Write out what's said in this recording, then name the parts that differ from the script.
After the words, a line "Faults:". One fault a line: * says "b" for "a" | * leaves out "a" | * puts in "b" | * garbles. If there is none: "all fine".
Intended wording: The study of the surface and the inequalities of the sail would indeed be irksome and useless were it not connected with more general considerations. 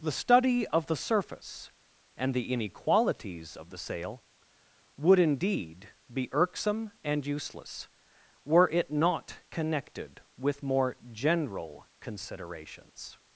The study of the surface and the inequalities of the sail would indeed be irksome and useless were it not connected with more general considerations.
Faults:
all fine